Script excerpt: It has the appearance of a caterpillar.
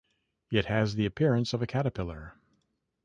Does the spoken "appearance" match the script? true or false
true